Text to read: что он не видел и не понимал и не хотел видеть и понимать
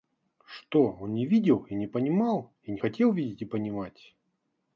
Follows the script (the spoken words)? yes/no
yes